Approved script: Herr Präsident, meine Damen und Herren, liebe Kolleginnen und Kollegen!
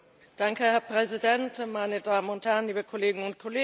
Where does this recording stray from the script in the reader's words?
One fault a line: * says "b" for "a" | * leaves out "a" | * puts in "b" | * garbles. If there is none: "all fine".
all fine